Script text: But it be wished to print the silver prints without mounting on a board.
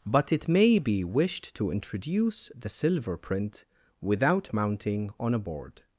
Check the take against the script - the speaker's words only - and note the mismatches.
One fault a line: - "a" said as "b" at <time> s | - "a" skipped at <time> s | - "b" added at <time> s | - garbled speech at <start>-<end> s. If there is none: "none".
- "may" added at 0.5 s
- "print" said as "introduce" at 1.7 s
- "prints" said as "print" at 3.2 s